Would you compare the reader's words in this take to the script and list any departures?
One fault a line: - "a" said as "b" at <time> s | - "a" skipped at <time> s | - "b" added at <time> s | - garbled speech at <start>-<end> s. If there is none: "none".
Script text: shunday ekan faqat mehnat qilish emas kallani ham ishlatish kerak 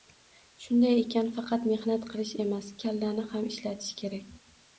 none